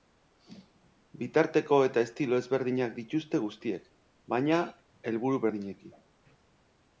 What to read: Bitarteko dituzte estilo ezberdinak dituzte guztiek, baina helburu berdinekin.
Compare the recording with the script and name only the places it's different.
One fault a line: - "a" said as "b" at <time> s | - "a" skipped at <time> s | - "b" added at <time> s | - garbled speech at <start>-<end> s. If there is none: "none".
- "dituzte" said as "eta" at 1.9 s